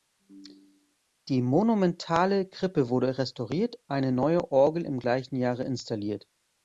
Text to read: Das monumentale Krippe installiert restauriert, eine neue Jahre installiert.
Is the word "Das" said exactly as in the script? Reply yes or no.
no